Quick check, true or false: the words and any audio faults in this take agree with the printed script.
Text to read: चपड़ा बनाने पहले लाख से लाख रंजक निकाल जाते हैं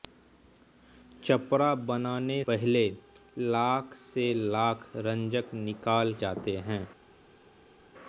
true